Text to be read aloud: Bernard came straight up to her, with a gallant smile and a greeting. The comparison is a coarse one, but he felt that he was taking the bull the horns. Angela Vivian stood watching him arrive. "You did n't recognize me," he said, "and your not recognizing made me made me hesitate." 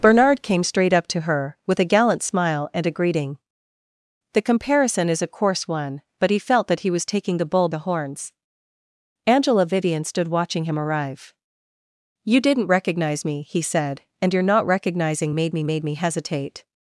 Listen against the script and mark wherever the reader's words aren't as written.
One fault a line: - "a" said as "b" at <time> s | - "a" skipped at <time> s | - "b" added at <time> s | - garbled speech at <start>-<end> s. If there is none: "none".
none